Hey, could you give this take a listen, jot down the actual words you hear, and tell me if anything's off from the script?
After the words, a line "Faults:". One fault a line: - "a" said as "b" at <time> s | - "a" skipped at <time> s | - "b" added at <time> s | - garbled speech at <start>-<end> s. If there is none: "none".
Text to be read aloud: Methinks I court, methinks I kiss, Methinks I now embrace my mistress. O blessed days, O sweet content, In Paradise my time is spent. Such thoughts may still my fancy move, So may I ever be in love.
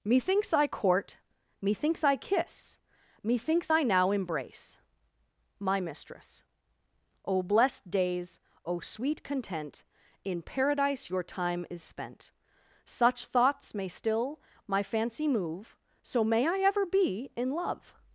Methinks I court, methinks I kiss, Methinks I now embrace my mistress. O blessed days, O sweet content, In Paradise your time is spent. Such thoughts may still my fancy move, So may I ever be in love.
Faults:
- "my" said as "your" at 11.1 s